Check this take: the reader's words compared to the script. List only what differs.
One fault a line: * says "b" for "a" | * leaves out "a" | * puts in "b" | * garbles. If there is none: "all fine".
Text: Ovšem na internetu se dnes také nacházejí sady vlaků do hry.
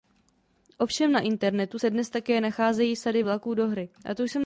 all fine